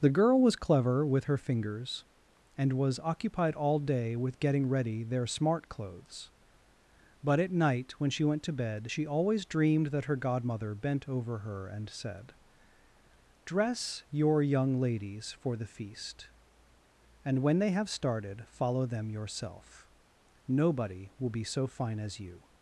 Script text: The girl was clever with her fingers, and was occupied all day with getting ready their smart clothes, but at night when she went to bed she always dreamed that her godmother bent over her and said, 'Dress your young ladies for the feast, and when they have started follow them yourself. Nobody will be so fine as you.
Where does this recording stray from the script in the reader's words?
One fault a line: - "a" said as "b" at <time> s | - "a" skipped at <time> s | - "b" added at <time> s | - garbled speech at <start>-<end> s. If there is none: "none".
none